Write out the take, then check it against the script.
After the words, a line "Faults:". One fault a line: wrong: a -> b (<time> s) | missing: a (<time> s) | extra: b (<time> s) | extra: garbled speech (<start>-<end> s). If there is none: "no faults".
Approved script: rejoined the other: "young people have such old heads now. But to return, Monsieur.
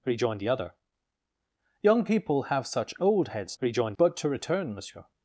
rejoined the other: "young people have such old heads rejoined. But to return, Monsieur.
Faults:
wrong: now -> rejoined (3.6 s)